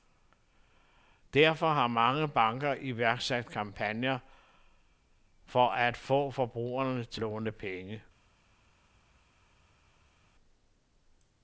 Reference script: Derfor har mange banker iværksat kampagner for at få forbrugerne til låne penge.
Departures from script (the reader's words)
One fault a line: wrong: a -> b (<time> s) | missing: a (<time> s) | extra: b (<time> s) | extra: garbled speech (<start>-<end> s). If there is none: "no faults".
no faults